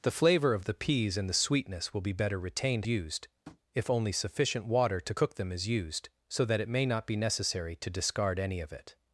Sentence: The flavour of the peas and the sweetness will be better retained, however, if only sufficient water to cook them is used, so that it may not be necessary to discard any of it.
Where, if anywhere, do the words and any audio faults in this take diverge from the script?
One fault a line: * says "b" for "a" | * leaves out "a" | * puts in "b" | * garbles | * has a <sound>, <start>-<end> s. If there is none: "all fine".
* says "used" for "however"
* has a tap, 3.4-3.6 s